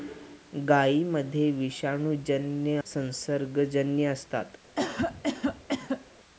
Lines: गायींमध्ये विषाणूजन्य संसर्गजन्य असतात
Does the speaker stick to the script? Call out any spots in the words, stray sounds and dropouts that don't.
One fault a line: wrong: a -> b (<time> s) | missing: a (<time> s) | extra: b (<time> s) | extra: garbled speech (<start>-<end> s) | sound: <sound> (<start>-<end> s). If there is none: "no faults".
sound: cough (4.8-6.1 s)